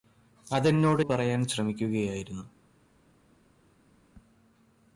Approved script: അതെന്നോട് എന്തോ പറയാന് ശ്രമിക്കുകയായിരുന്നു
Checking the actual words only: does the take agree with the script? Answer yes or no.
no